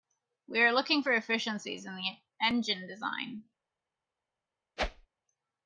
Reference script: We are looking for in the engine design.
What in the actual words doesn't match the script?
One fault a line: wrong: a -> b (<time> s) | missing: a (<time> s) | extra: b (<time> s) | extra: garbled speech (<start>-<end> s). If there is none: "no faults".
extra: efficiencies (1.1 s)